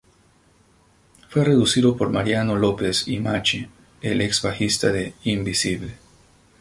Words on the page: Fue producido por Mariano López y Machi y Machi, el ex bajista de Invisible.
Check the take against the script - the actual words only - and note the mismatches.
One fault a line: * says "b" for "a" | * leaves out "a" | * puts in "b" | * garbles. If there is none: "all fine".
* leaves out "y Machi"